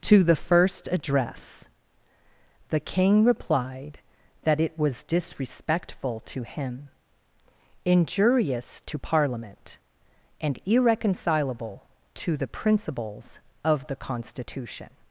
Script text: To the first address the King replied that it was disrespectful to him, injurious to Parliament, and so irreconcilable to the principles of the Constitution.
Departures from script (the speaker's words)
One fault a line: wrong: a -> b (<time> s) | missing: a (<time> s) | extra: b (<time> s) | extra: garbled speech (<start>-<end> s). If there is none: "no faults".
missing: so (10.6 s)